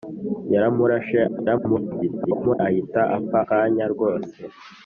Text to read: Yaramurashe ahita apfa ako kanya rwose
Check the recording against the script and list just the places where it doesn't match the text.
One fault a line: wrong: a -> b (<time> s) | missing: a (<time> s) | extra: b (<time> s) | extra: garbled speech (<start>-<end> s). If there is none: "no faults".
extra: garbled speech (1.3-2.6 s)
missing: ako (3.4 s)